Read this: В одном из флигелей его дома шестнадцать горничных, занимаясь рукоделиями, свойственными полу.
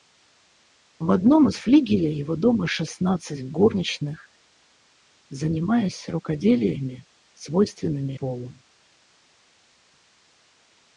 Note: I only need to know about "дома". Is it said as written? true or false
true